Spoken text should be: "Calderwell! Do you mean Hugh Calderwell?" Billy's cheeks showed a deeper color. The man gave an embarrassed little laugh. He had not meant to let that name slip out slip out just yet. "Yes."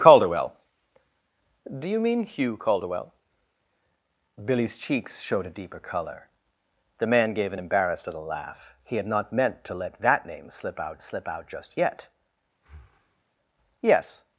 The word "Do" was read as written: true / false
true